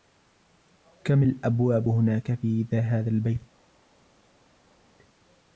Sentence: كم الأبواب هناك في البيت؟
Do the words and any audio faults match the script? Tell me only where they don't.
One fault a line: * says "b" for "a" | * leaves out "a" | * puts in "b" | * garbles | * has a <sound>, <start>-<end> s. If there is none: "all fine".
* puts in "هذا"